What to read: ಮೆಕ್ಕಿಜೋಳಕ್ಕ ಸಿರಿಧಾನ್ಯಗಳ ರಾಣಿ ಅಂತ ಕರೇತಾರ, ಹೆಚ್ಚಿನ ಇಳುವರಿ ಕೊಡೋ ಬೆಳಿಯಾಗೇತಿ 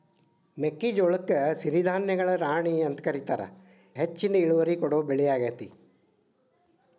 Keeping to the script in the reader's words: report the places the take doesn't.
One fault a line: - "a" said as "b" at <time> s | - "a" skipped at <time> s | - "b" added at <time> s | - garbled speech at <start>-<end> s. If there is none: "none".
none